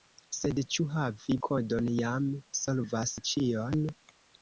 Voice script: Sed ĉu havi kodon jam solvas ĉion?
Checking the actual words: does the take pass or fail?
pass